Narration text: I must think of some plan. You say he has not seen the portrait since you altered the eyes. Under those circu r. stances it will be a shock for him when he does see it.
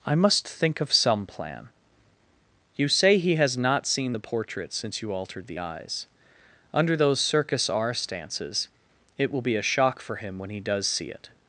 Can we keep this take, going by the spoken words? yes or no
no